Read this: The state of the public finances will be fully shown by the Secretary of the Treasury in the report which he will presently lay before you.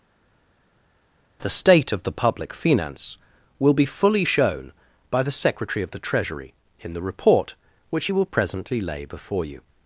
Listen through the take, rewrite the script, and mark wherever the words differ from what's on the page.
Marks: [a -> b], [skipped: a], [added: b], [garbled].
The state of the public [finances -> finance] will be fully shown by the Secretary of the Treasury in the report which he will presently lay before you.